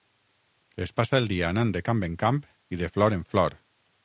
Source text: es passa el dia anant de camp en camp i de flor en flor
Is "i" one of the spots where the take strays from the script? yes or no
no